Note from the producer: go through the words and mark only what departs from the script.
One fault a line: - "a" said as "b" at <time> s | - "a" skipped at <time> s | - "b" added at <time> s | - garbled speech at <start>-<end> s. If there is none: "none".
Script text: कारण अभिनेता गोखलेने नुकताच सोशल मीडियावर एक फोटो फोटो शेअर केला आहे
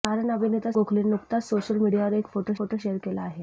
none